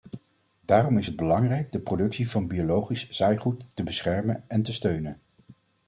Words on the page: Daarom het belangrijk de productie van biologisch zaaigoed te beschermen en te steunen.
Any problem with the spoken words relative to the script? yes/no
yes